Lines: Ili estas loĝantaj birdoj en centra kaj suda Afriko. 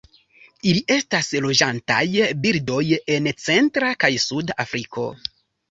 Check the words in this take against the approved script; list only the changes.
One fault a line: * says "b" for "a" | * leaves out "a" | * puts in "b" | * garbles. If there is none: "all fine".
all fine